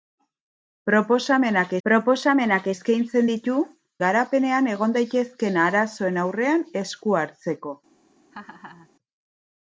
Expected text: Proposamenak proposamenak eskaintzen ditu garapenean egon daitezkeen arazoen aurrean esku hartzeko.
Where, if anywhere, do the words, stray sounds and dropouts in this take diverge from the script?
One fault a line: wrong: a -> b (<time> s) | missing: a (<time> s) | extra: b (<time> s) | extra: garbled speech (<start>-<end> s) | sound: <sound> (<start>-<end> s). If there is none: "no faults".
sound: laugh (8.3-8.9 s)